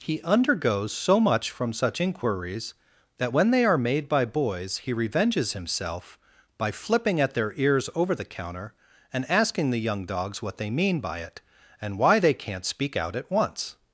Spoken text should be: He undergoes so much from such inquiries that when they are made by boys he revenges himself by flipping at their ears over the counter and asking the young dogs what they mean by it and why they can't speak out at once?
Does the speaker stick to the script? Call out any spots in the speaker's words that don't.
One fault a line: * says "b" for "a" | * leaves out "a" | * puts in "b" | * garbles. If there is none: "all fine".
all fine